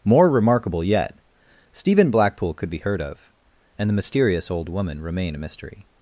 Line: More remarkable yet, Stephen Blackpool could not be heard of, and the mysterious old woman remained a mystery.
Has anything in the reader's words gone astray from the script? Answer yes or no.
yes